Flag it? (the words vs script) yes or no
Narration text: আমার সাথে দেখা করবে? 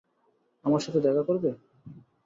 no